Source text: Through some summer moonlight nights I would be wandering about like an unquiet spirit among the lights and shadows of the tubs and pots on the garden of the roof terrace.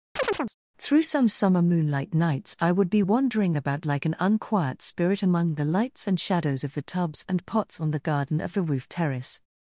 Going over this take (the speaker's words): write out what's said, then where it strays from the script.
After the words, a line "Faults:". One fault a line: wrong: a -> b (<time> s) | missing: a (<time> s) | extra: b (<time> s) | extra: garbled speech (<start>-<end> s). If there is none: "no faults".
Through some summer moonlight nights I would be wandering about like an unquiet spirit among the lights and shadows of the tubs and pots on the garden of the roof terrace.
Faults:
no faults